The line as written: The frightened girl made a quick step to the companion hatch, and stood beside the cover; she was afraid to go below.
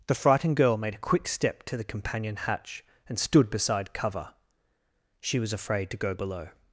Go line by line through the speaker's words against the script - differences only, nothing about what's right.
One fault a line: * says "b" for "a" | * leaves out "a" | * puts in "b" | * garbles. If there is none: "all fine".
* leaves out "the"